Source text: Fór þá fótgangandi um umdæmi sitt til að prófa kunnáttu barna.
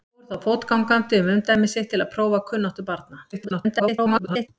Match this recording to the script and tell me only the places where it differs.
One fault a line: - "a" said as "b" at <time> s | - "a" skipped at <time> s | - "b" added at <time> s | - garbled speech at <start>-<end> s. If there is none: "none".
- garbled speech at 3.3-4.5 s